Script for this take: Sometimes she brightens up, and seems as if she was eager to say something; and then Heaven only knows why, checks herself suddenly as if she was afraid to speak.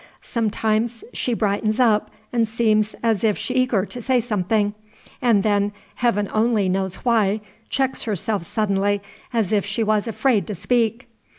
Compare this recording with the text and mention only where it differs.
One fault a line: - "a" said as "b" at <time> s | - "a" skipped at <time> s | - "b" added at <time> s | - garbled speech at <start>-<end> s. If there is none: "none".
- "was" skipped at 3.5 s